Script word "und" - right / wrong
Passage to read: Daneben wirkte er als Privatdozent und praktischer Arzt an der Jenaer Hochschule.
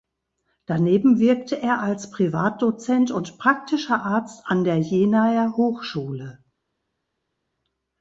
right